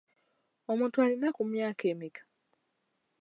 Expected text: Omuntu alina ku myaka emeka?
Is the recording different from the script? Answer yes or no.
no